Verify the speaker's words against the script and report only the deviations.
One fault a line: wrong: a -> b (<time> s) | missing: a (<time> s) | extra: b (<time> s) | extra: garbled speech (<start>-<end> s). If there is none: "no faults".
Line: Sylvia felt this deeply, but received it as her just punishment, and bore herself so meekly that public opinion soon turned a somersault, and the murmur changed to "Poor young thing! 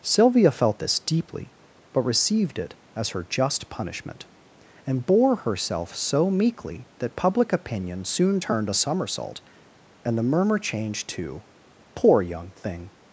no faults